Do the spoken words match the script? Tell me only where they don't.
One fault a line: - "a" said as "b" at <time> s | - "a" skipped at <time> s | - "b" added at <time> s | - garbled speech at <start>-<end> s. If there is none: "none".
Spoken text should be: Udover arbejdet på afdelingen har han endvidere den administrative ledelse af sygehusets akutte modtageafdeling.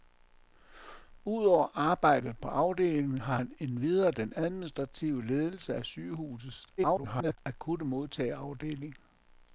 - garbled speech at 6.8-7.4 s